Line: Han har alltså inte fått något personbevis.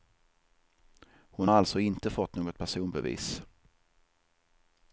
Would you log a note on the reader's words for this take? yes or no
yes